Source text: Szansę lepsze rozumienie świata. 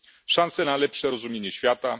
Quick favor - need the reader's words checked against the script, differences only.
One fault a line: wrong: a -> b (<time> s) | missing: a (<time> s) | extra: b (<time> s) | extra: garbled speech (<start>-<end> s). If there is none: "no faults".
extra: na (0.6 s)